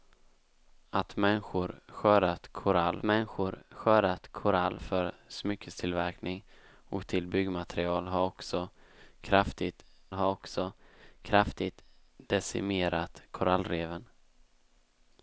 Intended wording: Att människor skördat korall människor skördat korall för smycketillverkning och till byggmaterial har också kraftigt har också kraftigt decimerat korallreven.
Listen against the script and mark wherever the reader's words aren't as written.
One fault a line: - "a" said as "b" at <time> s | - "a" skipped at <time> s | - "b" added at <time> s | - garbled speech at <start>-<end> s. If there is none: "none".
none